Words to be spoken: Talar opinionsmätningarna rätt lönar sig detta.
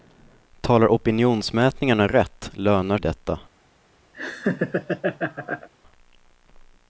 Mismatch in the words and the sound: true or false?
true